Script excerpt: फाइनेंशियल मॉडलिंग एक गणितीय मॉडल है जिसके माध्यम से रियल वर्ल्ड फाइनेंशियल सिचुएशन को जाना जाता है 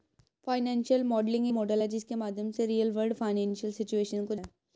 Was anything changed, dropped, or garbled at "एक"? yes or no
yes